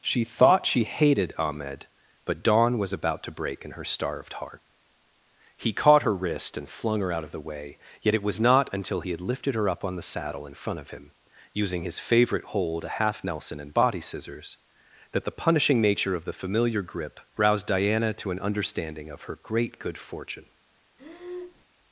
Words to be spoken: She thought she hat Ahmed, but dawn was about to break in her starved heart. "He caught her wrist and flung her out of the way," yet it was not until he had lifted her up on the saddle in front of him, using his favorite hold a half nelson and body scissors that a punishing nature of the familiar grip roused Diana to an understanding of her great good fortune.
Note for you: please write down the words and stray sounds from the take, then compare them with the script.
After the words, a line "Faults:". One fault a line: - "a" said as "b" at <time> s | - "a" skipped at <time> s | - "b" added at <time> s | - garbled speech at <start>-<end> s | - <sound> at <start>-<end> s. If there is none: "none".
She thought she hated Ahmed, but dawn was about to break in her starved heart. "He caught her wrist and flung her out of the way," yet it was not until he had lifted her up on the saddle in front of him, using his favorite hold a half nelson and body scissors that the punishing nature of the familiar grip roused Diana to an understanding of her great good fortune.
Faults:
- "hat" said as "hated" at 0.8 s
- "a" said as "the" at 15.2 s
- breath at 21.0-21.7 s